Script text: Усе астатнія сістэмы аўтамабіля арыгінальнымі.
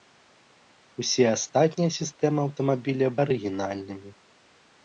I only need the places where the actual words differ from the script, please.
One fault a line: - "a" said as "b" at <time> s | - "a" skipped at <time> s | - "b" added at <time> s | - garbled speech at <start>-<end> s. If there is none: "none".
none